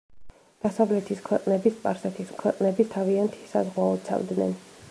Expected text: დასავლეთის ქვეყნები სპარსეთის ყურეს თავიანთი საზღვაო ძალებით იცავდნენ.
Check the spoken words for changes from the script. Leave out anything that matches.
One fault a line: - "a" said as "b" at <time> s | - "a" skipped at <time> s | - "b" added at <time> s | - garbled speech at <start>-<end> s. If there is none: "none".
- "ყურეს" said as "ქვეყნები" at 2.4 s
- "ძალებით" skipped at 4.0 s